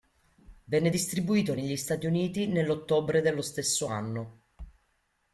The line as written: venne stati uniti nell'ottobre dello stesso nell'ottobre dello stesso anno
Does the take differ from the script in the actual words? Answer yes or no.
yes